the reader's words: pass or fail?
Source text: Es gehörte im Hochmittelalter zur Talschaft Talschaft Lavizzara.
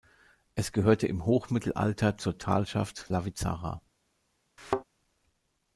fail